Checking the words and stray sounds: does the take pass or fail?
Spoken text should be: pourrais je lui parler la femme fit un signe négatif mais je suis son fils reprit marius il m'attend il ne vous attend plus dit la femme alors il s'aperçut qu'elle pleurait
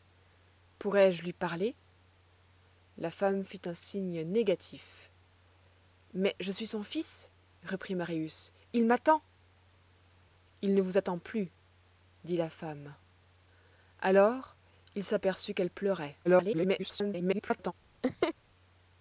fail